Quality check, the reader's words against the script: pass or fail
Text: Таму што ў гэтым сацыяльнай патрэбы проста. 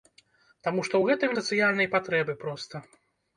pass